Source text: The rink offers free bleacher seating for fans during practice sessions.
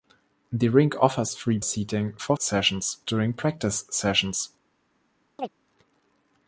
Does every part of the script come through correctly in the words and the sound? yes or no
no